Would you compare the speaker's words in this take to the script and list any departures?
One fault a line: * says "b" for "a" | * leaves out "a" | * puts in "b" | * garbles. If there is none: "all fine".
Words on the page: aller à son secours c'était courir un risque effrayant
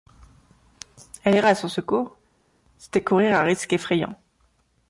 all fine